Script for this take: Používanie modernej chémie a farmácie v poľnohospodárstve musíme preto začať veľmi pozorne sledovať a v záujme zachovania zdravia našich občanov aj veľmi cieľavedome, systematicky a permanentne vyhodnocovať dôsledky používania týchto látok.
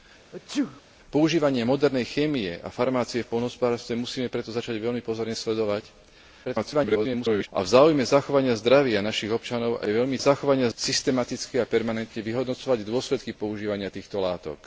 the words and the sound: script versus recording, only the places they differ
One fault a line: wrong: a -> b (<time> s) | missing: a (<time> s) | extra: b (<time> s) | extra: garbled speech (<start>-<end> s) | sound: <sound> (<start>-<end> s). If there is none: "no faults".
sound: sneeze (0.3-0.8 s)
extra: garbled speech (6.4-7.5 s)
wrong: cieľavedome -> zachovania (10.2 s)